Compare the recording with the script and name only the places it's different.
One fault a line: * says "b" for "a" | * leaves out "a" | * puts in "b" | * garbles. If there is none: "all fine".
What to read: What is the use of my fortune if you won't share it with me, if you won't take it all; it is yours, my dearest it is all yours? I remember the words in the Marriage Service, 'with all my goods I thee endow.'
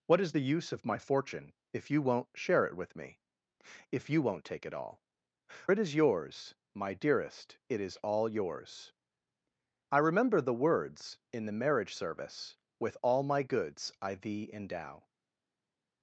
all fine